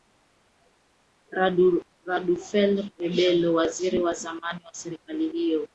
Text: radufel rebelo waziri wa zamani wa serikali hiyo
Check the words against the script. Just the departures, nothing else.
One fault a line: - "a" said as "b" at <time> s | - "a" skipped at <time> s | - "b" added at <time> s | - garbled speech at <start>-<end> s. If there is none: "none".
none